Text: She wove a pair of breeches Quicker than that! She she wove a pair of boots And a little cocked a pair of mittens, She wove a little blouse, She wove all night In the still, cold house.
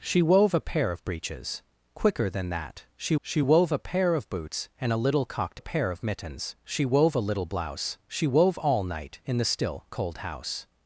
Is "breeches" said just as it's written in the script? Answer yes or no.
yes